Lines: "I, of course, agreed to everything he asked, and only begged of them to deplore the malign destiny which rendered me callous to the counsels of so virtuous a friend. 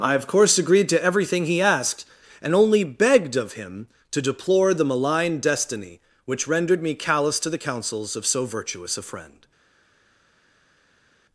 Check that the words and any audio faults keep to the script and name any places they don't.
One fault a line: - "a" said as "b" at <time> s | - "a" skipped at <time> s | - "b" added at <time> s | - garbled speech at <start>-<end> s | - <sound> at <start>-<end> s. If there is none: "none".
- "them" said as "him" at 3.5 s